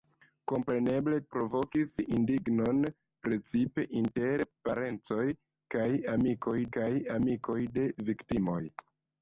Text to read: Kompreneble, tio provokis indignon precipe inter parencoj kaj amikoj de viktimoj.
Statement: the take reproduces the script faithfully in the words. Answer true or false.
false